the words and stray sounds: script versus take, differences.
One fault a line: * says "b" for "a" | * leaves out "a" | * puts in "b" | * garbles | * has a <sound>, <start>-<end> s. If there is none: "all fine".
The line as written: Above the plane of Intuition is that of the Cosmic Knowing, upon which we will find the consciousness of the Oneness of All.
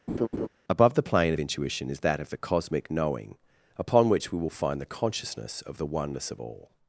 * has a laugh, 0.1-0.5 s